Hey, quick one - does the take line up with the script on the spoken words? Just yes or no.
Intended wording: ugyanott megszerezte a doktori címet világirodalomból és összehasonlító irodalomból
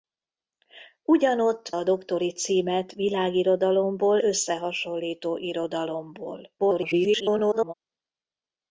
no